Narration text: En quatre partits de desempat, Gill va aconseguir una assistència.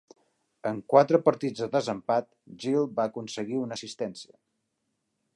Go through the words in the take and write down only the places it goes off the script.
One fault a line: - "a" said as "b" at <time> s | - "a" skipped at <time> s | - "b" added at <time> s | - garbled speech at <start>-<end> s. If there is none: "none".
none